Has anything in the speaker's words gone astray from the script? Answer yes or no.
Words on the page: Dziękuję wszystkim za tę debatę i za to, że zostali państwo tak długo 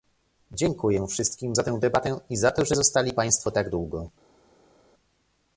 no